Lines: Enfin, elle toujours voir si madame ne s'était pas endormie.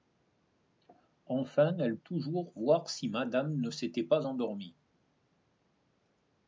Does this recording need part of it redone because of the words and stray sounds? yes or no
no